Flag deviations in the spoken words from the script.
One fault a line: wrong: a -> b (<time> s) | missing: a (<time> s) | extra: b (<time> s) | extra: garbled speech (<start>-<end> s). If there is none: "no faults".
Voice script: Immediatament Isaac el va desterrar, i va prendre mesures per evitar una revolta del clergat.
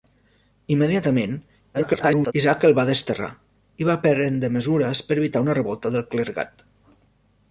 extra: garbled speech (1.7-2.3 s)